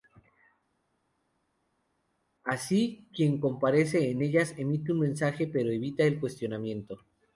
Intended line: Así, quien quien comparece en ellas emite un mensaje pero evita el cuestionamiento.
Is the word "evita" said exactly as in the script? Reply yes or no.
yes